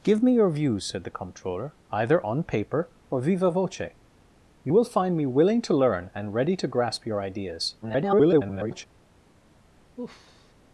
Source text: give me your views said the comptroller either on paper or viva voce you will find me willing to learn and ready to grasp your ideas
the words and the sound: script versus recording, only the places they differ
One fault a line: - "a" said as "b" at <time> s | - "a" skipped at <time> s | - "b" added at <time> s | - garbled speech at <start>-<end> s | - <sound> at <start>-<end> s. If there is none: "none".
- garbled speech at 7.8-8.9 s
- sigh at 10.0-10.5 s